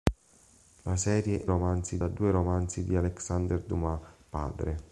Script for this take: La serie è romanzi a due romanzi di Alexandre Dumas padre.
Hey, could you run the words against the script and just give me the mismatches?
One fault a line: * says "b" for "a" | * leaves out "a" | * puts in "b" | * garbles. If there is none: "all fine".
all fine